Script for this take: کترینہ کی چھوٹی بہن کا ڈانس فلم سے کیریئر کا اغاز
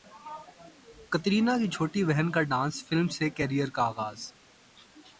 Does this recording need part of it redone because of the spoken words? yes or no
no